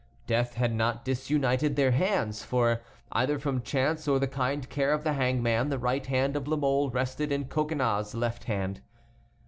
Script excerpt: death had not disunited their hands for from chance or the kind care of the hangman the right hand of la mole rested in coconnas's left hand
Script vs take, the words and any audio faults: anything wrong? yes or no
yes